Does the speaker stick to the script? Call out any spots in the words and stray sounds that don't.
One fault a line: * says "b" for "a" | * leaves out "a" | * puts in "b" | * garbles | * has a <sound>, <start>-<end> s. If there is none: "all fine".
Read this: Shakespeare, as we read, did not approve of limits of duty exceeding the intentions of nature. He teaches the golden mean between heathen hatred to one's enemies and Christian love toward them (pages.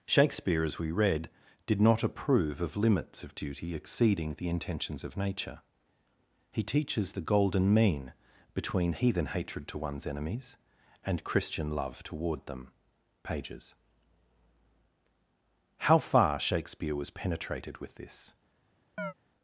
* puts in "How far Shakespeare was penetrated with this"
* has a chirp, 19.0-19.1 s